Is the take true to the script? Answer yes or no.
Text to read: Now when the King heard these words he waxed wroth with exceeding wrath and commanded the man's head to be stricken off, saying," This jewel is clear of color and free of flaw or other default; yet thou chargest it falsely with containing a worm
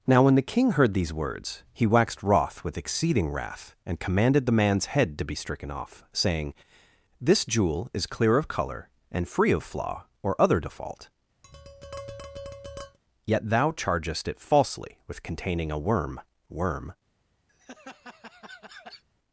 no